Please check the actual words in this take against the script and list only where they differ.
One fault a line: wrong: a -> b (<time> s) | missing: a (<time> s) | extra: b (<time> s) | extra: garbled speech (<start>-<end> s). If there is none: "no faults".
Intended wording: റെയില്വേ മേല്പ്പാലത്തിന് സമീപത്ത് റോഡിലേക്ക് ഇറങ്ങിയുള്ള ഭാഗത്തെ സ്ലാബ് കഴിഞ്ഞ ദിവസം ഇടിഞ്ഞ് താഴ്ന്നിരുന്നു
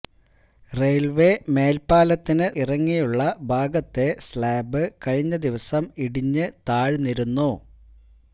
missing: സമീപത്ത് റോഡിലേക്ക് (2.5 s)